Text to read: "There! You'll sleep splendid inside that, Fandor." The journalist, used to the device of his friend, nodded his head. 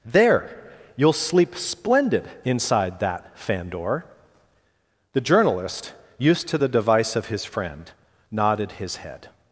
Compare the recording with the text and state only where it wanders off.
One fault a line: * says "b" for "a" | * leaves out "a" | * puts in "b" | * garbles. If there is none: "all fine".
all fine